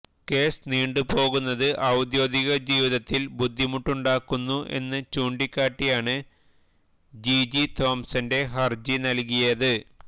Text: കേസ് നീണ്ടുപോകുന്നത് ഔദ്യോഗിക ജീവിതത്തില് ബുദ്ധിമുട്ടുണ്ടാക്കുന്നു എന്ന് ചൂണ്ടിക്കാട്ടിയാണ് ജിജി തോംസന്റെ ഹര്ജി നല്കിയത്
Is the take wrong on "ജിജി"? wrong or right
right